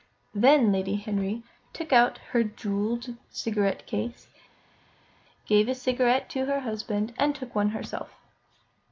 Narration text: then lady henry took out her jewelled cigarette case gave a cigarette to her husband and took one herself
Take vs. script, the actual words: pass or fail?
pass